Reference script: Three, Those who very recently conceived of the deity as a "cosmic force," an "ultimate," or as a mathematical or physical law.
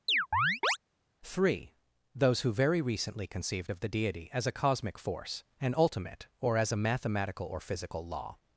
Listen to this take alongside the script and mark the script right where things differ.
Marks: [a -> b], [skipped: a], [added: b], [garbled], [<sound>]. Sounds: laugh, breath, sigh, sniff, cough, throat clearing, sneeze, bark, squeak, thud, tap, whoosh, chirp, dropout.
[chirp] Three, Those who very recently conceived of the deity as a "cosmic force," an "ultimate," or as a mathematical or physical law.